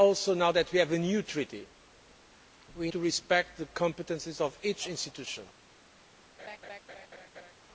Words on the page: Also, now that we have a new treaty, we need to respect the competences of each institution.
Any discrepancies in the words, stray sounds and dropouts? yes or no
yes